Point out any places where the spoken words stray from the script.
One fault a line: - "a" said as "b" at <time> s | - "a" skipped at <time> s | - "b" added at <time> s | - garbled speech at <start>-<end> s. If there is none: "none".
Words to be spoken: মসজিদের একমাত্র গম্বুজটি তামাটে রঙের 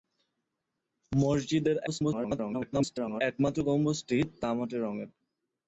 - garbled speech at 1.9-3.2 s